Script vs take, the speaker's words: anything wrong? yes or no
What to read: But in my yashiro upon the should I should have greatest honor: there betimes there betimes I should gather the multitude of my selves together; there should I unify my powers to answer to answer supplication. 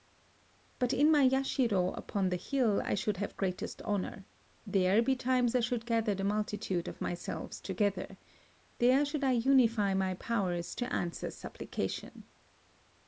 yes